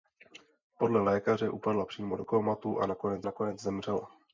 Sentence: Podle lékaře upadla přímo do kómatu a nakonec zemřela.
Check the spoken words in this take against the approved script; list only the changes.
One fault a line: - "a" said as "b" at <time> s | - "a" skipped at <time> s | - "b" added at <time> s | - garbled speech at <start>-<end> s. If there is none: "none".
- "nakonec" added at 3.2 s